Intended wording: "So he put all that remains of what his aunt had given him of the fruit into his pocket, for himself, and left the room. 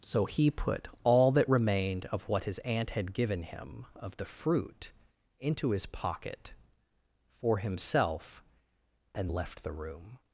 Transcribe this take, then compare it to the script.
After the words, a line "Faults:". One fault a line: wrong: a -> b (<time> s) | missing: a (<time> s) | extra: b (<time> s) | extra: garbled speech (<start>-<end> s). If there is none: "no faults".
"So he put all that remained of what his aunt had given him of the fruit into his pocket, for himself, and left the room.
Faults:
wrong: remains -> remained (1.5 s)